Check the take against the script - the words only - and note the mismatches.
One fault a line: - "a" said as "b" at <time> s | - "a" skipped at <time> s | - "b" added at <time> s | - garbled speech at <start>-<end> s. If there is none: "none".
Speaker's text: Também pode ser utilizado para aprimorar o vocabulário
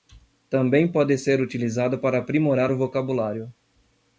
none